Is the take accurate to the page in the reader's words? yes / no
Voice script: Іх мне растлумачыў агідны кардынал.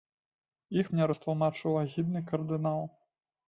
yes